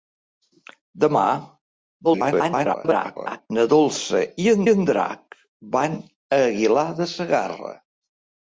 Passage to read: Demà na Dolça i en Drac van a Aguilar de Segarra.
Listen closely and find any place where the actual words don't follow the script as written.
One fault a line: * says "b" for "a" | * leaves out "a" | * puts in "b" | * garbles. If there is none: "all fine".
* garbles
* puts in "en"